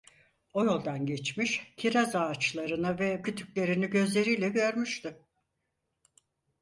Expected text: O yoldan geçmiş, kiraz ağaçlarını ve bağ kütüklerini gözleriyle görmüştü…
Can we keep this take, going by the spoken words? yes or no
no